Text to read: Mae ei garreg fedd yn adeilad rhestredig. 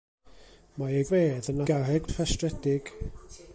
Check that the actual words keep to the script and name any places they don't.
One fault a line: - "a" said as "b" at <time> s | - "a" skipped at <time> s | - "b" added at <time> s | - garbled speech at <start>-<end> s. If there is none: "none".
- "garreg" skipped at 1.1 s
- "adeilad" said as "garreg" at 1.7 s